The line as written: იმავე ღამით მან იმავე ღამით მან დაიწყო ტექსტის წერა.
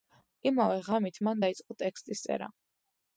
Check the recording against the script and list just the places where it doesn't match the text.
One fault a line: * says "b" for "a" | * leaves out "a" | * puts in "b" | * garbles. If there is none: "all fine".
* leaves out "იმავე ღამით მან"